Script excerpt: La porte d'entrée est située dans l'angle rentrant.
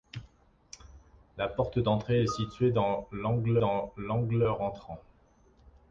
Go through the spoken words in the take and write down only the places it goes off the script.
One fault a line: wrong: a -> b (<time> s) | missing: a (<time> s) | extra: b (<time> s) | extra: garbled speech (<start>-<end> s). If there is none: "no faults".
extra: dans l'angle (3.6 s)